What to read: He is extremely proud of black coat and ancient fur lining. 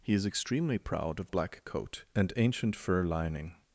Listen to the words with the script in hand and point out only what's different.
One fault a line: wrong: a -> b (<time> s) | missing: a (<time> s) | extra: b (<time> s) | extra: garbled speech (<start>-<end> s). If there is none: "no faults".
no faults